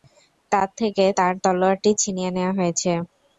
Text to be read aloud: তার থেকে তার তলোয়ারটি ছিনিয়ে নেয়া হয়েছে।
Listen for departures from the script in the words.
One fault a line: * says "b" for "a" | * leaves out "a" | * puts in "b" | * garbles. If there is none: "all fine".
all fine